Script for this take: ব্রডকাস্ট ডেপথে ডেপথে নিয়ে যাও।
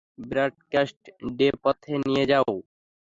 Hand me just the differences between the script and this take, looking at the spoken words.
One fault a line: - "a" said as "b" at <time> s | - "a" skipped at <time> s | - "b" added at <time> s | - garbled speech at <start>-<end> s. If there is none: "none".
- "ডেপথে" skipped at 1.9 s